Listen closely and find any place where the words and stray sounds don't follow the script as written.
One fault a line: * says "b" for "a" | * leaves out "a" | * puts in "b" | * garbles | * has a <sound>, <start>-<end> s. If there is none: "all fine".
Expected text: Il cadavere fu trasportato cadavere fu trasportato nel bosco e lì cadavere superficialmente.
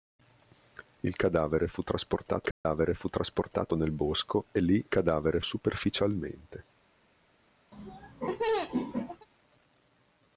* has a dropout, 2.5-2.6 s
* has a laugh, 7.7-9.3 s